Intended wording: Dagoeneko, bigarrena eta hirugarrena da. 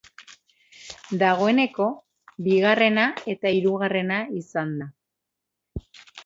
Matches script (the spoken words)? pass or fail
fail